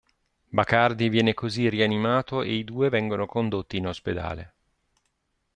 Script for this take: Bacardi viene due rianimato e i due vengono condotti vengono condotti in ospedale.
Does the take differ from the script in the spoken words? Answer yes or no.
yes